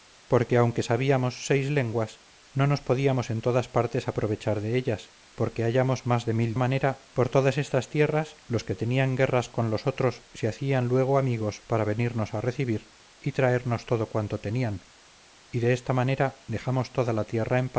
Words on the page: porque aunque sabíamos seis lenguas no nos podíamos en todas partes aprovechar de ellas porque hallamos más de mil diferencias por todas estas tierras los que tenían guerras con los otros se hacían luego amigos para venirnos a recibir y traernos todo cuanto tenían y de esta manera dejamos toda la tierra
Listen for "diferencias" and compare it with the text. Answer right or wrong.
wrong